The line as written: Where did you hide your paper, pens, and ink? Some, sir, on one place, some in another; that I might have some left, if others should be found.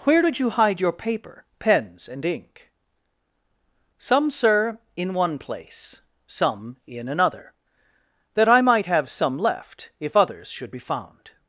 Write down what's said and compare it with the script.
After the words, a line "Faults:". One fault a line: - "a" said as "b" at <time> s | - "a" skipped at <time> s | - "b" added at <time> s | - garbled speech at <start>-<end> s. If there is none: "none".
Where did you hide your paper, pens, and ink? Some, sir, in one place, some in another; that I might have some left, if others should be found.
Faults:
- "on" said as "in" at 5.0 s